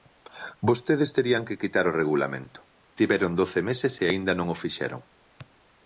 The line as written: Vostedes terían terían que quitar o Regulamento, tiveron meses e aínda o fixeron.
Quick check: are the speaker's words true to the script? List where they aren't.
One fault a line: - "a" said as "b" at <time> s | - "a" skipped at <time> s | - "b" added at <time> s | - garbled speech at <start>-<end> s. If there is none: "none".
- "terían" skipped at 1.4 s
- "doce" added at 3.4 s
- "non" added at 4.3 s